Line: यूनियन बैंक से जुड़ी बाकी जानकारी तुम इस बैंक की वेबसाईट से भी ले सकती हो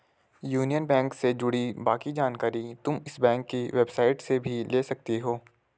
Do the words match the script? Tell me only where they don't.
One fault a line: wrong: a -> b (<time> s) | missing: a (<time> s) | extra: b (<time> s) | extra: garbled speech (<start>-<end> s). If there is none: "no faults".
no faults